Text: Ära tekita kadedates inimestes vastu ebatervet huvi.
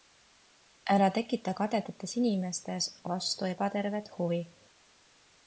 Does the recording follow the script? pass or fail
pass